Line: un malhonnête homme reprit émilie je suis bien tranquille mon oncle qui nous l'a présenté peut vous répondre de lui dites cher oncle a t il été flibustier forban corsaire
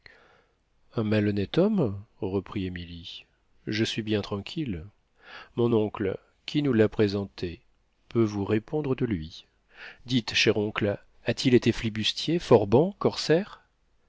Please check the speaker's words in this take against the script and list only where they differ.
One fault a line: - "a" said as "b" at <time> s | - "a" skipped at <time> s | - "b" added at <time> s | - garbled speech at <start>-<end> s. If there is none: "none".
none